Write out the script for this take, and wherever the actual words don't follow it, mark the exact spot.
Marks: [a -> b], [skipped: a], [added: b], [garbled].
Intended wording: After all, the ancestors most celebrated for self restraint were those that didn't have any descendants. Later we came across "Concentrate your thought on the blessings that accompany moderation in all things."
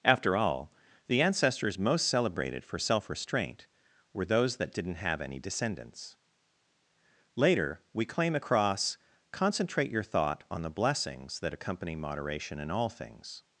After all, the ancestors most celebrated for self restraint were those that didn't have any descendants. Later we [came -> claim] across "Concentrate your thought on the blessings that accompany moderation in all things."